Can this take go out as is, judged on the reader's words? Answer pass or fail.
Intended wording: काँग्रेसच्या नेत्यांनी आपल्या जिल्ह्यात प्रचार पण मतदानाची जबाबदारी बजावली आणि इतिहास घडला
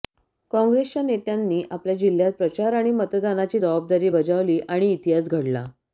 fail